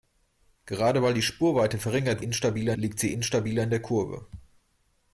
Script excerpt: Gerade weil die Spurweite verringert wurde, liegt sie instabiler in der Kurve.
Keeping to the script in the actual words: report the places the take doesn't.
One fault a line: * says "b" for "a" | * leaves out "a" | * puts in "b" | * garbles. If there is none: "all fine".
* says "instabiler" for "wurde"